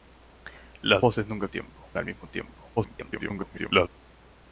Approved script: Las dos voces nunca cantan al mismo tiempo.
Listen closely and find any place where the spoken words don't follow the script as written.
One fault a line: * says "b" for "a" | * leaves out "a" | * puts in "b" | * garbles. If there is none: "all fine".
* leaves out "dos"
* says "tiempo" for "cantan"
* garbles